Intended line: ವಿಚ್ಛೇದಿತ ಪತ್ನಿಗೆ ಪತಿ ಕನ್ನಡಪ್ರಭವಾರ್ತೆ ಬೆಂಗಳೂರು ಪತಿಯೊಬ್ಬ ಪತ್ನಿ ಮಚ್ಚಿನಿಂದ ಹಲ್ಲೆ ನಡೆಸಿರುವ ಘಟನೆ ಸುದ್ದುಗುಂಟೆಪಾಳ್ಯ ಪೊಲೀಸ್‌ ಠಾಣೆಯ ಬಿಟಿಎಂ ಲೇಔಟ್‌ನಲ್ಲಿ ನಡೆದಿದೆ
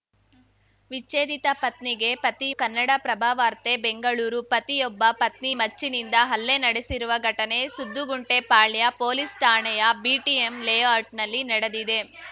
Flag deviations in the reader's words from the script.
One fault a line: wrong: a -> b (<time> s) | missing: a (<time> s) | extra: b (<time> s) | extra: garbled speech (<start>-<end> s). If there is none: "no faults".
no faults